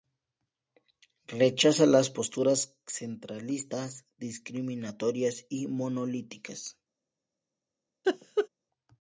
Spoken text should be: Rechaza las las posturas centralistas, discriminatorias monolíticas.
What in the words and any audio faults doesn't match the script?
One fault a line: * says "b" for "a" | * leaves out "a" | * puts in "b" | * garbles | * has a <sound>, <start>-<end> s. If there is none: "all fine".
* leaves out "las"
* puts in "y"
* has a laugh, 8.0-8.5 s